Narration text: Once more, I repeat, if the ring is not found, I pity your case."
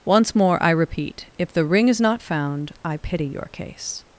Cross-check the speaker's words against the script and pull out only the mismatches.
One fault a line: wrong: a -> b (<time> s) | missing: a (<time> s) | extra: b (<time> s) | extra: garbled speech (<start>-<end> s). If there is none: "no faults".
no faults